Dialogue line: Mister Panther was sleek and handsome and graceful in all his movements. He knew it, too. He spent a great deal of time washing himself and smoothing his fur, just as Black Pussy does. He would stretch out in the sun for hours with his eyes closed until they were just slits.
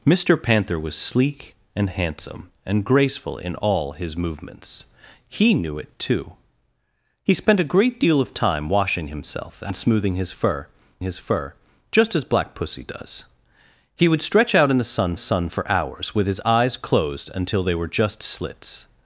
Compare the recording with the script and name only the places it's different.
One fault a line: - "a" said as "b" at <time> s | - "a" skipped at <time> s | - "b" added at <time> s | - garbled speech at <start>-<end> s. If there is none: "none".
- "his fur" added at 11.0 s
- "sun" added at 15.2 s